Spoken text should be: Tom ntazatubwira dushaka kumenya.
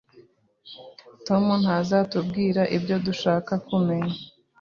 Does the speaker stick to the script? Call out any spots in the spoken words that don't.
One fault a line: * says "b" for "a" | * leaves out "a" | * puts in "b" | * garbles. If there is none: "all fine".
* puts in "ibyo"